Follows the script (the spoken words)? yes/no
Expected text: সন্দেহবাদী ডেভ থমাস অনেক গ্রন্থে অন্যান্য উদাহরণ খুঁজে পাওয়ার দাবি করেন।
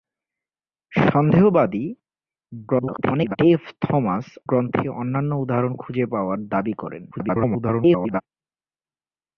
no